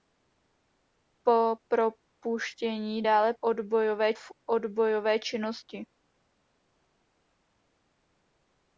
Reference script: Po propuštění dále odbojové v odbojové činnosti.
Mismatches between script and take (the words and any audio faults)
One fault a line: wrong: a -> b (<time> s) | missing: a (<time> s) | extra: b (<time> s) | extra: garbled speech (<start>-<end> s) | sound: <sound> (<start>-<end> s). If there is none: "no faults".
no faults